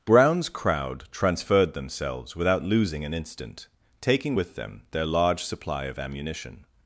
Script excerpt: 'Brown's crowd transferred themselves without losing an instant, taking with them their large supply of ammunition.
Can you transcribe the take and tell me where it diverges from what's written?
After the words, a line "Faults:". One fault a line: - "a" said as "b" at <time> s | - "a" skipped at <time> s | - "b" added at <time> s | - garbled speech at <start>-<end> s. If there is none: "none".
'Brown's crowd transferred themselves without losing an instant, taking with them their large supply of ammunition.
Faults:
none